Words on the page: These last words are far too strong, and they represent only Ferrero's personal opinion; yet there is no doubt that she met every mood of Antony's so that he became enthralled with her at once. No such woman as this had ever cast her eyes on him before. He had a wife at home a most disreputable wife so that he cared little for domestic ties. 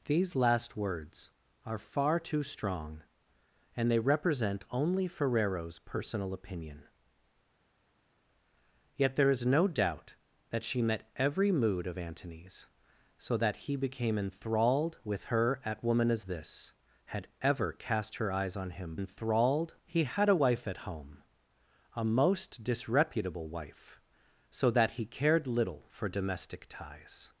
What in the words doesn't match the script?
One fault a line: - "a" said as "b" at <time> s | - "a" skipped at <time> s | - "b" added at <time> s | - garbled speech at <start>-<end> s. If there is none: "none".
- "once No such" skipped at 15.8 s
- "before" said as "enthralled" at 18.9 s